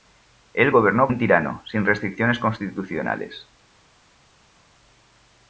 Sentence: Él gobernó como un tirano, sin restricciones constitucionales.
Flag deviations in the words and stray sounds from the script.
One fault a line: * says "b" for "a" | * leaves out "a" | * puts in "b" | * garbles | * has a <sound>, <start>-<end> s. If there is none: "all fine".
* leaves out "como"